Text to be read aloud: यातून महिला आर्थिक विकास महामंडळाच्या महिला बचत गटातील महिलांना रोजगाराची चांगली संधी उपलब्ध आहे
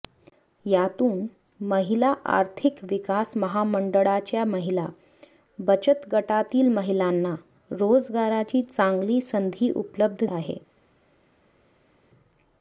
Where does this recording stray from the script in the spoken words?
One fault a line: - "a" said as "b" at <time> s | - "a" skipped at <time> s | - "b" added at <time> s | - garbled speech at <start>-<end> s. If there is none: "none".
none